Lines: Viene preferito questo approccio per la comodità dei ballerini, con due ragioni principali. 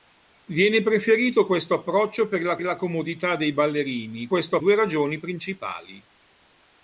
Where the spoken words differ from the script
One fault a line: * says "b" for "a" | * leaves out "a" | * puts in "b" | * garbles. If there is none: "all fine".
* puts in "la"
* says "questo" for "con"